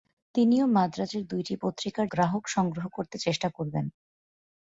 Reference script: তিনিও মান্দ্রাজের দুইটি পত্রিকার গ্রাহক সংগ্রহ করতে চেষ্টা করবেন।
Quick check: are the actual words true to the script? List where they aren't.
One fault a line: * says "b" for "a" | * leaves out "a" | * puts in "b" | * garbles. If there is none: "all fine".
all fine